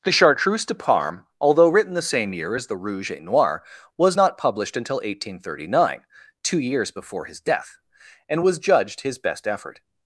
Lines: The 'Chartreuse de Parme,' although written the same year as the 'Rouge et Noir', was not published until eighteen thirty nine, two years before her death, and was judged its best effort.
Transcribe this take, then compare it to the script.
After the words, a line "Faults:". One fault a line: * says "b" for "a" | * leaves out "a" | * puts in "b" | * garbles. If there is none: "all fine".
The 'Chartreuse de Parme,' although written the same year as the 'Rouge et Noir', was not published until eighteen thirty nine, two years before his death, and was judged his best effort.
Faults:
* says "his" for "her"
* says "his" for "its"